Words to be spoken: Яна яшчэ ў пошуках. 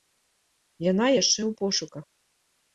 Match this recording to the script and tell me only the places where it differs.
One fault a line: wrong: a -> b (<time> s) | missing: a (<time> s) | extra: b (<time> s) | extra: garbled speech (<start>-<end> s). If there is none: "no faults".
no faults